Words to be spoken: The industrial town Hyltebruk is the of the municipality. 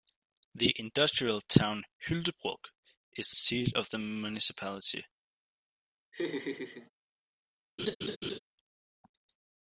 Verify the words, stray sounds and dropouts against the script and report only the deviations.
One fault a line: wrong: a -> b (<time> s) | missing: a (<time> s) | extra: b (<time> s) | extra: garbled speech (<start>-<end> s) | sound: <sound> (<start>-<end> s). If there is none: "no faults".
extra: seat (3.3 s)
sound: laugh (6.1-6.9 s)
sound: laugh (7.8-8.4 s)